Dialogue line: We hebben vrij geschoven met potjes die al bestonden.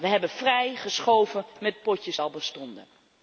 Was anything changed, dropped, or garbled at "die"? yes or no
yes